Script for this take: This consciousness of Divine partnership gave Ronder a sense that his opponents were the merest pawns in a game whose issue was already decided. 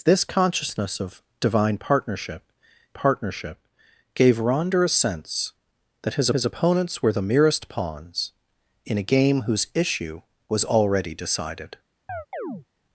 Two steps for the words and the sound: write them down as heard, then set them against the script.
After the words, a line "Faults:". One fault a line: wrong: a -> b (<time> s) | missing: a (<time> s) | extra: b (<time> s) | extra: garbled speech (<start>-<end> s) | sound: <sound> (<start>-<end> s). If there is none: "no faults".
This consciousness of Divine partnership partnership gave Ronder a sense that his his opponents were the merest pawns in a game whose issue was already decided.
Faults:
extra: partnership (2.9 s)
extra: his (6.3 s)
sound: chirp (12.1-12.7 s)